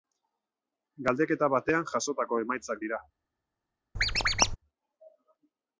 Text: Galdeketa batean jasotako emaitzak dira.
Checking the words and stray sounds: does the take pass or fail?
fail